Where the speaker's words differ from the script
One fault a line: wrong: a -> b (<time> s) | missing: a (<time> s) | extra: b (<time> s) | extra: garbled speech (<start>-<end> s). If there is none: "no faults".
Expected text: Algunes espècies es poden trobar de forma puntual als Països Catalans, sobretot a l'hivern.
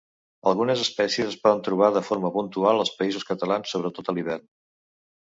no faults